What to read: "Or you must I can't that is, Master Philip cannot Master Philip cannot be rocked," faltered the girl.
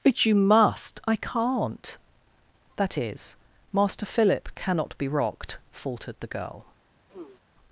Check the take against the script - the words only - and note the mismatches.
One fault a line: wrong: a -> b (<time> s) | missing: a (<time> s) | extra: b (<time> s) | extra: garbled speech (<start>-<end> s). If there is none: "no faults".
wrong: Or -> But (0.0 s)
missing: Master Philip cannot (5.0 s)